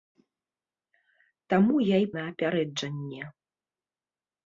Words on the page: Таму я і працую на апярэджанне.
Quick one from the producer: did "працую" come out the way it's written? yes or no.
no